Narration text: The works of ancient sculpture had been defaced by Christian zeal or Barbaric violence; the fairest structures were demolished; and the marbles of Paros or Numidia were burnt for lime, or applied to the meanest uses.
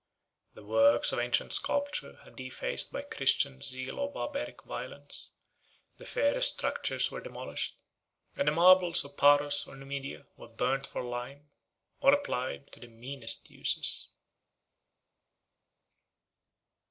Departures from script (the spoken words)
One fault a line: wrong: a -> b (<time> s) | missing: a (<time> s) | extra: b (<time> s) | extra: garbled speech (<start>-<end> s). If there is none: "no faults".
missing: been (2.4 s)